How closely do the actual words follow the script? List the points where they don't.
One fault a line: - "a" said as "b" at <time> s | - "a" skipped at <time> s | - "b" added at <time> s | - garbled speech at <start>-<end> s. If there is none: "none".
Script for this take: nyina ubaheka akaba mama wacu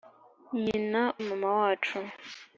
- "ubaheka akaba" skipped at 1.0 s